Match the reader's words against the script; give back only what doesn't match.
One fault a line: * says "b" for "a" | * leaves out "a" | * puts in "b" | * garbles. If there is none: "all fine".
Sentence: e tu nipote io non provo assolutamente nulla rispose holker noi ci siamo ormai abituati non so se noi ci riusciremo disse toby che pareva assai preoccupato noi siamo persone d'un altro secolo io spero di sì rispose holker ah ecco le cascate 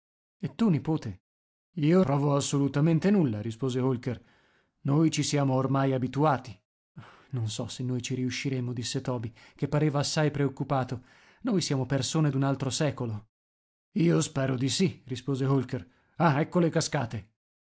* leaves out "non"